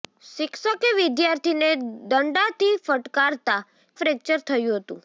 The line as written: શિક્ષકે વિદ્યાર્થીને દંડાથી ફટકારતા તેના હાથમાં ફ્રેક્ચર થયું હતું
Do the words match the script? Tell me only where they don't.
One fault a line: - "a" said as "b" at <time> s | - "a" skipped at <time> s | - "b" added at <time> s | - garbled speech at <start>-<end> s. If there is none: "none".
- "તેના હાથમાં" skipped at 3.6 s